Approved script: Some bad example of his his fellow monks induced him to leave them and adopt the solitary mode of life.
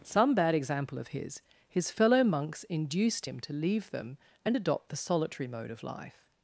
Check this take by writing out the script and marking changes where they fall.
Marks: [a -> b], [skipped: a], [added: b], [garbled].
Some bad example of his his fellow monks induced him to leave them and adopt the solitary mode of life.